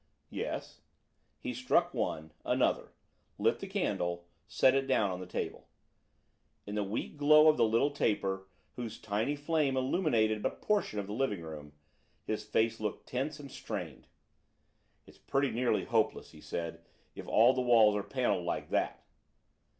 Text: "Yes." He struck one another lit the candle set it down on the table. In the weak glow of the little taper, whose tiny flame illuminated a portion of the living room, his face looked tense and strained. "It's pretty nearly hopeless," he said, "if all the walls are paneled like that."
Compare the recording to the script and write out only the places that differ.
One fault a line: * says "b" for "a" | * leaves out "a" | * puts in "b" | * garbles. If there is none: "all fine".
all fine